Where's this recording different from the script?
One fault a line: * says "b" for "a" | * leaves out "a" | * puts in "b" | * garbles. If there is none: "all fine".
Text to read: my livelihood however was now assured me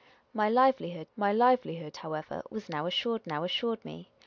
* puts in "my livelihood"
* puts in "now assured"